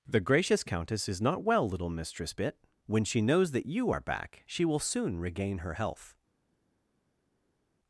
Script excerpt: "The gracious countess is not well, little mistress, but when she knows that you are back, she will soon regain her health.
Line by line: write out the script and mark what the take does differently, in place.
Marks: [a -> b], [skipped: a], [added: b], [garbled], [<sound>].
"The gracious countess is not well, little mistress, [but -> bit] when she knows that you are back, she will soon regain her health.